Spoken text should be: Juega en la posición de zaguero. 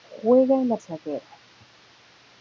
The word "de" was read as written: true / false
false